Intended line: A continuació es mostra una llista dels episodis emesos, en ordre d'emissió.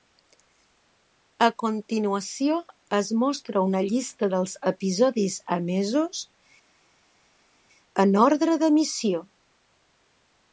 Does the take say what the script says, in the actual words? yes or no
yes